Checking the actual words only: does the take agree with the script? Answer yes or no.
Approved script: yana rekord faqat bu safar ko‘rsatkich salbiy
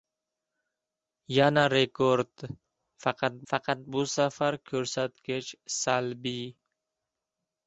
no